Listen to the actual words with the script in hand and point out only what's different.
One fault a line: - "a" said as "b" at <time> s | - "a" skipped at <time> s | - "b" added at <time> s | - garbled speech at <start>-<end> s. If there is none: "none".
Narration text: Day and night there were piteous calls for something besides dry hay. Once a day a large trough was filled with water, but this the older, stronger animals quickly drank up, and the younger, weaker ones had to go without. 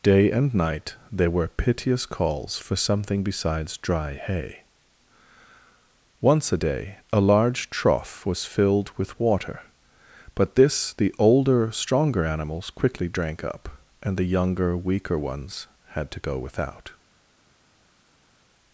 none